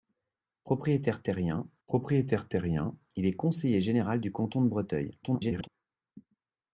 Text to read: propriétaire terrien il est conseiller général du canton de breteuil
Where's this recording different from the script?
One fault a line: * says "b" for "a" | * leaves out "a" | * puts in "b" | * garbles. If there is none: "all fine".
* puts in "propriétaire terrien"
* garbles